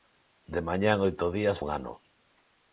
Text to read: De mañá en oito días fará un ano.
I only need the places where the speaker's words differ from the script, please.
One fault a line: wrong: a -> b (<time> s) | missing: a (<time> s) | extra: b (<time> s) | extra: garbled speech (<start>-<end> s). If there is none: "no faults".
missing: fará (1.6 s)